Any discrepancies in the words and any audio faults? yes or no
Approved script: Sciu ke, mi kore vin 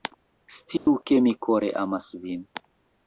yes